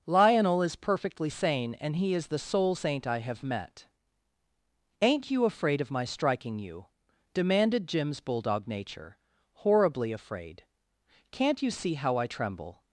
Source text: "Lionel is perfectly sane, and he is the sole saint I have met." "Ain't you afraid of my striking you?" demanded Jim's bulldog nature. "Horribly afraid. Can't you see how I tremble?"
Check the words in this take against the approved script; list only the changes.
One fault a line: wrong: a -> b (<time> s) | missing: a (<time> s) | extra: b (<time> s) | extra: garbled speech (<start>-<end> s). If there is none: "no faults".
no faults